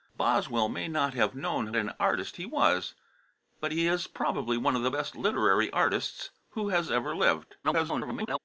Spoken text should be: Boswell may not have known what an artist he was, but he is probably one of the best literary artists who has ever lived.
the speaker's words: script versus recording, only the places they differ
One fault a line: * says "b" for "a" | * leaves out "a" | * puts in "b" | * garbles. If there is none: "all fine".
* leaves out "what"
* garbles